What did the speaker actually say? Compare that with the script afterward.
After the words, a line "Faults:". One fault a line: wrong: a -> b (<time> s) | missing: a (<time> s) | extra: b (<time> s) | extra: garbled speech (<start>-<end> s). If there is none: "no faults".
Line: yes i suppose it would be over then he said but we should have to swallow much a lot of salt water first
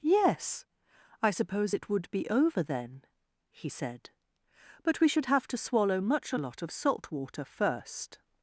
yes i suppose it would be over then he said but we should have to swallow much a lot of salt water first
Faults:
no faults